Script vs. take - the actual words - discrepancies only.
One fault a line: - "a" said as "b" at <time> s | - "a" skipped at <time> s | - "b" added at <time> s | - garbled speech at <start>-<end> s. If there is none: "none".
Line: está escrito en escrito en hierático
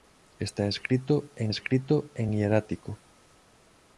none